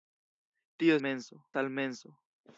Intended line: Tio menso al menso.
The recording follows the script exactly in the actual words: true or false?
true